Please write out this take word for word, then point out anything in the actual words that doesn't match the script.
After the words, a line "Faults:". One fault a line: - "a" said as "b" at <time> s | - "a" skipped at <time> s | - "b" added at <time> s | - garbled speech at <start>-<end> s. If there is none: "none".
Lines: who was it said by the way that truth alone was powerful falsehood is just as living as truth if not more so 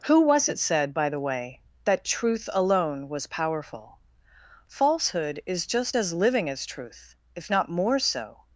who was it said by the way that truth alone was powerful falsehood is just as living as truth if not more so
Faults:
none